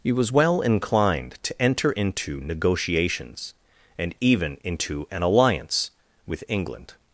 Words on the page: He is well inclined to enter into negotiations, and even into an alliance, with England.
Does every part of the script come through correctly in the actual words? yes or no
no